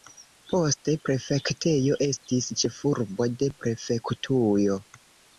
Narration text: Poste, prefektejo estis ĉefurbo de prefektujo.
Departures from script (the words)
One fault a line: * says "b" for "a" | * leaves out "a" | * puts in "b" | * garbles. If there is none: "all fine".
all fine